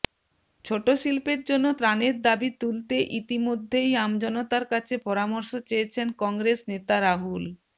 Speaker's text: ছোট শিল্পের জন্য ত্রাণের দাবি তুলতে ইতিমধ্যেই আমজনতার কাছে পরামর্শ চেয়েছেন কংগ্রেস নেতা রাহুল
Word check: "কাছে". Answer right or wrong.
right